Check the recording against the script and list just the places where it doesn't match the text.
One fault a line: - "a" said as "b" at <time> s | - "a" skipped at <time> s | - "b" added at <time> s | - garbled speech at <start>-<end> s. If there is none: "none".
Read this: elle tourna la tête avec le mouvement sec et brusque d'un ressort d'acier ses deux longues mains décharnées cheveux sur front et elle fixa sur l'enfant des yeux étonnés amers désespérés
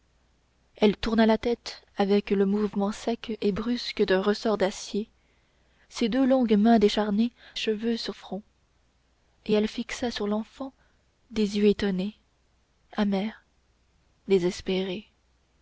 none